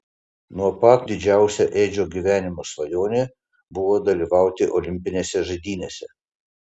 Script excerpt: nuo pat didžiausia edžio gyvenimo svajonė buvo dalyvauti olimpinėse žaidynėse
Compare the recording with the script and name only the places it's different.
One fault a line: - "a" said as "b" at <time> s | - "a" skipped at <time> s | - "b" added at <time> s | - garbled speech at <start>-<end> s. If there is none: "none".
none